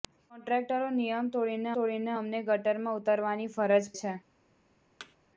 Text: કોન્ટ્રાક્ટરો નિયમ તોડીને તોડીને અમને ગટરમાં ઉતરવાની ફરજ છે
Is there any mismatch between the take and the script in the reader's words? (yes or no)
no